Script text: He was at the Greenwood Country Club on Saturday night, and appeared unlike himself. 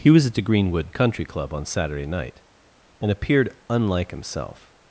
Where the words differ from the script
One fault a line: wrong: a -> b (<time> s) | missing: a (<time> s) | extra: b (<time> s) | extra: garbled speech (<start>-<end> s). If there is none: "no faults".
no faults